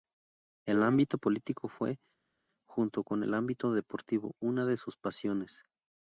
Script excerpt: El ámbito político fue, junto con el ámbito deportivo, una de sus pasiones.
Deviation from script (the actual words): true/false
false